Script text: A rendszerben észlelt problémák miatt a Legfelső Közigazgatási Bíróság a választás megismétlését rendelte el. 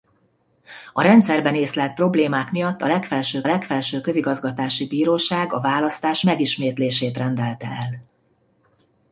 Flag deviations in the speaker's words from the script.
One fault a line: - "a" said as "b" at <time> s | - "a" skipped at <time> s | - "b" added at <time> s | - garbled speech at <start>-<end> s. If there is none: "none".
- "Legfelső" added at 3.5 s